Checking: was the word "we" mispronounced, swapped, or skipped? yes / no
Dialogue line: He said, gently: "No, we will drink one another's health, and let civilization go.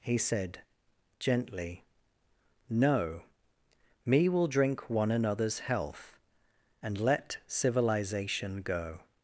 yes